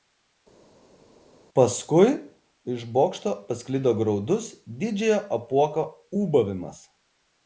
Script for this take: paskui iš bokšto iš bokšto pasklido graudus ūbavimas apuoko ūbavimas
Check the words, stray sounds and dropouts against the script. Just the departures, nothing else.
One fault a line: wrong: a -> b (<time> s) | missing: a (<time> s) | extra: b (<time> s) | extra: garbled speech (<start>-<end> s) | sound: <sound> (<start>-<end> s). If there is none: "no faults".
missing: iš bokšto (3.3 s)
wrong: ūbavimas -> didžiojo (4.8 s)